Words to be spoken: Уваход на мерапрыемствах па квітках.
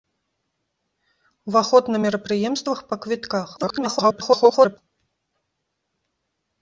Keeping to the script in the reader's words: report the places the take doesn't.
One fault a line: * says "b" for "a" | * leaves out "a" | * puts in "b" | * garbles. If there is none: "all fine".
* garbles